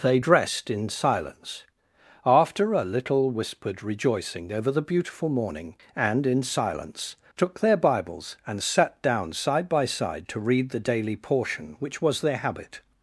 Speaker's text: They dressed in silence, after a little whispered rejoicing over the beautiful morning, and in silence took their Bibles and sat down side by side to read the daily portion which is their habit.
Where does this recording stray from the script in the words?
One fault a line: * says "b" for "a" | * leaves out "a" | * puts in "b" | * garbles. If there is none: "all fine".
* says "was" for "is"